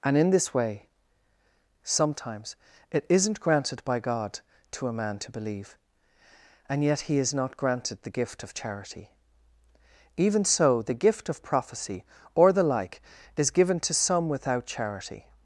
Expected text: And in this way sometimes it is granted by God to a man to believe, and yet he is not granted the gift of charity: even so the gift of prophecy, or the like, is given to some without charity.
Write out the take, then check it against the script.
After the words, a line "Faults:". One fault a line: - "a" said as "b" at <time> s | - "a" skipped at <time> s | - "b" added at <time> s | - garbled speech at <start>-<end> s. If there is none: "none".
And in this way sometimes it isn't granted by God to a man to believe, and yet he is not granted the gift of charity: even so the gift of prophecy, or the like, is given to some without charity.
Faults:
- "is" said as "isn't" at 3.1 s